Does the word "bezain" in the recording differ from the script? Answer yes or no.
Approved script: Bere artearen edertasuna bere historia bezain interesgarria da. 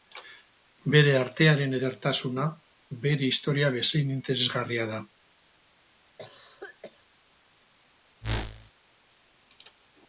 no